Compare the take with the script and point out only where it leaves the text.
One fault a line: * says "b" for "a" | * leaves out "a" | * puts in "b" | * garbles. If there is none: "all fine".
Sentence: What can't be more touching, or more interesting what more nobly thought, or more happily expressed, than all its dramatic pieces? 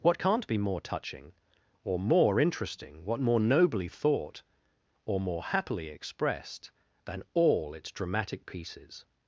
all fine